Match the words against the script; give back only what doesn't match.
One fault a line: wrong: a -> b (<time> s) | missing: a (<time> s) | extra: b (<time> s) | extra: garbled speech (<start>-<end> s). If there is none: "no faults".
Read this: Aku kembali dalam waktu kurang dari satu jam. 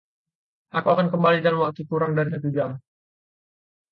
extra: akan (0.9 s)